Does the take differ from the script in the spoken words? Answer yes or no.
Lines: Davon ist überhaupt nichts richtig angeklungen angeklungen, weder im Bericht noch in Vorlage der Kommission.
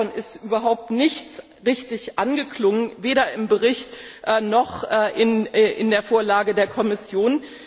yes